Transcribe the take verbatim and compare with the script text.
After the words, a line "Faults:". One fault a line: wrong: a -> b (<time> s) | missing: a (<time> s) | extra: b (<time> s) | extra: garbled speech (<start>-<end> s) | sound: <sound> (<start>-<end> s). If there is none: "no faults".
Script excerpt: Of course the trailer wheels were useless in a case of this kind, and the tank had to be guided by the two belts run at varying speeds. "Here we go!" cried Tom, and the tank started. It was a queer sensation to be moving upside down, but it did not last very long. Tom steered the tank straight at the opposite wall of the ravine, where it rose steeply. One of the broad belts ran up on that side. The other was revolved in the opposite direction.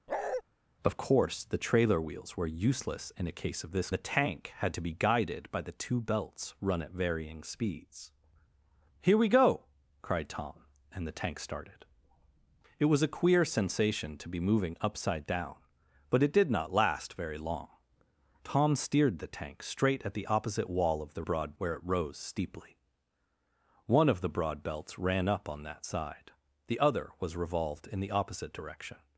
Of course the trailer wheels were useless in a case of this the tank had to be guided by the two belts run at varying speeds. "Here we go!" cried Tom, and the tank started. It was a queer sensation to be moving upside down, but it did not last very long. Tom steered the tank straight at the opposite wall of the broad, where it rose steeply. One of the broad belts ran up on that side. The other was revolved in the opposite direction.
Faults:
sound: bark (0.1-0.4 s)
missing: kind and (3.9 s)
wrong: ravine -> broad (21.2 s)